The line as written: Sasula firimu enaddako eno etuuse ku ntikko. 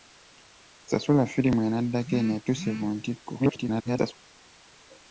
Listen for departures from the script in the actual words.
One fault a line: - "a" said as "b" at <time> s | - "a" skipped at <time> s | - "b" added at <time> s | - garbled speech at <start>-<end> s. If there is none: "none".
- garbled speech at 3.4-4.1 s